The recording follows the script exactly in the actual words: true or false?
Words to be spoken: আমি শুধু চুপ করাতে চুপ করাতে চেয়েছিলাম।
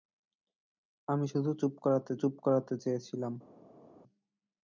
true